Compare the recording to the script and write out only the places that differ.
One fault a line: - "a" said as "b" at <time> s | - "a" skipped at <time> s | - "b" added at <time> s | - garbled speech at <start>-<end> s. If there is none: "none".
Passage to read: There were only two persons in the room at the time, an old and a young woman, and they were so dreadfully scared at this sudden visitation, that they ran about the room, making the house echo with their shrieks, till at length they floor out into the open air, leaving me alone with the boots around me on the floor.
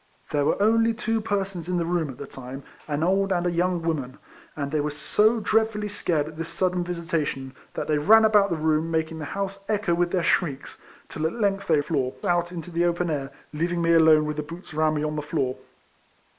none